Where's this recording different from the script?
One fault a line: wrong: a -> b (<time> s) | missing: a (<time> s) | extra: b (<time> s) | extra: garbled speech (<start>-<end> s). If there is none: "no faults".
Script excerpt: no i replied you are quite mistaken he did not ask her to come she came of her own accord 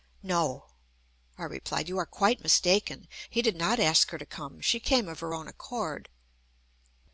no faults